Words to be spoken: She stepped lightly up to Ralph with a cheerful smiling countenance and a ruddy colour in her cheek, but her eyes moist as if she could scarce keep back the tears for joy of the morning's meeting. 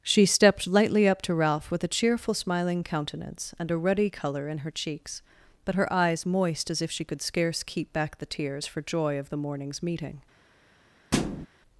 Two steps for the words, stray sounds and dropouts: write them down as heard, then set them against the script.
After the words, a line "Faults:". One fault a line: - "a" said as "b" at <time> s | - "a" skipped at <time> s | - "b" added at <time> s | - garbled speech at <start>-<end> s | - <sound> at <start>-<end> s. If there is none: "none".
She stepped lightly up to Ralph with a cheerful smiling countenance and a ruddy colour in her cheeks, but her eyes moist as if she could scarce keep back the tears for joy of the morning's meeting.
Faults:
- "cheek" said as "cheeks" at 4.7 s
- thud at 11.1-11.5 s